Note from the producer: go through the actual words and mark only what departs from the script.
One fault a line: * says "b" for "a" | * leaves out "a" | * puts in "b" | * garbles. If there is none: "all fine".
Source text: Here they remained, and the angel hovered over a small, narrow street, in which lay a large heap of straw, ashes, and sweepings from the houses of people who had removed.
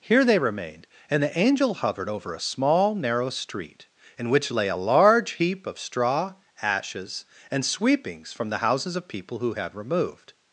all fine